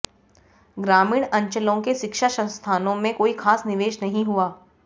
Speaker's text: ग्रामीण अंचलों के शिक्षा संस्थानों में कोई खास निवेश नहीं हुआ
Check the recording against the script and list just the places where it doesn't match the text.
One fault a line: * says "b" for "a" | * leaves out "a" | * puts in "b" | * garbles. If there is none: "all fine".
all fine